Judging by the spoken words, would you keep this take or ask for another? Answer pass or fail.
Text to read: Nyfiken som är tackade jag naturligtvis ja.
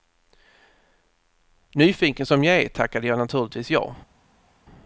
fail